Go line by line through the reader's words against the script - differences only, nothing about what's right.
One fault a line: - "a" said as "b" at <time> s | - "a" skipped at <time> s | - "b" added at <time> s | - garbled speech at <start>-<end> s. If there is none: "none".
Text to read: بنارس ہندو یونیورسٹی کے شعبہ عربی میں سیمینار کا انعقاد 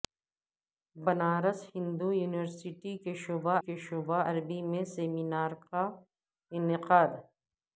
- "کے شعبہ" added at 3.6 s